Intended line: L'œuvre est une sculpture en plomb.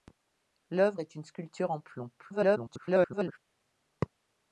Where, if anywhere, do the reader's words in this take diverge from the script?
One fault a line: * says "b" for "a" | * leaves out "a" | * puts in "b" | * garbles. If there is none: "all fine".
* garbles